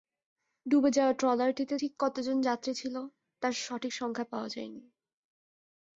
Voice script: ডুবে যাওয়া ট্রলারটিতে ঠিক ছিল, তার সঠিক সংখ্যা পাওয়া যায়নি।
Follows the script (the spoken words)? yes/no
no